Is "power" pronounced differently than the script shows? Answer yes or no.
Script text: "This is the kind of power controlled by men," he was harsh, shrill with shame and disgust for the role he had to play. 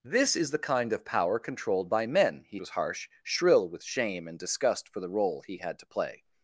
no